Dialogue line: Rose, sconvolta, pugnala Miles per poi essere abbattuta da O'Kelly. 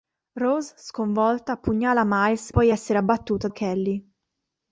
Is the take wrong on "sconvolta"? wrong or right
right